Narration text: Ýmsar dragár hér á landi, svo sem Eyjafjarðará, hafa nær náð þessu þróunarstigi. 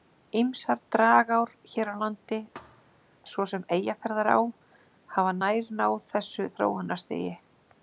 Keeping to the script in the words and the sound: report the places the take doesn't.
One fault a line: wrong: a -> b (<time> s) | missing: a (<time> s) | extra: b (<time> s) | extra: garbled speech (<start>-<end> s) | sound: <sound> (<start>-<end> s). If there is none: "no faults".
sound: thud (2.5-3.1 s)